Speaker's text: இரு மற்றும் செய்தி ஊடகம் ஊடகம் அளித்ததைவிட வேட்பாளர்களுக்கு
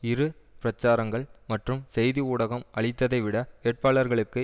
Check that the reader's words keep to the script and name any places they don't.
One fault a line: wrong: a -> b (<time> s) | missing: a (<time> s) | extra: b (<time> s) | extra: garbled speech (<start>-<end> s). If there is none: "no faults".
extra: பிரச்சாரங்கள் (0.6 s)
missing: ஊடகம் (2.7 s)